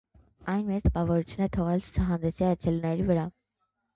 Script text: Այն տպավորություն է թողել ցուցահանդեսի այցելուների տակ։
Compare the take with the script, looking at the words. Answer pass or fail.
fail